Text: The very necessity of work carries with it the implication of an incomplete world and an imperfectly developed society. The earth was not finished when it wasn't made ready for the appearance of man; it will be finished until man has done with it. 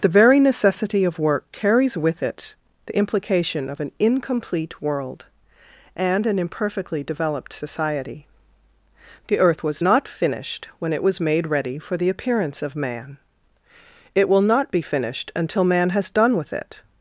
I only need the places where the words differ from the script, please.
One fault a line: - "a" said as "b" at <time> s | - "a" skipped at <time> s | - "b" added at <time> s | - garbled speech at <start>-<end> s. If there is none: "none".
- "wasn't" said as "was" at 11.0 s
- "not" added at 14.4 s